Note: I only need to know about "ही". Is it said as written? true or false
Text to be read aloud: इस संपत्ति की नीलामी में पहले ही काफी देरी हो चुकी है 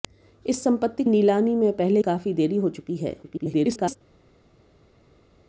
false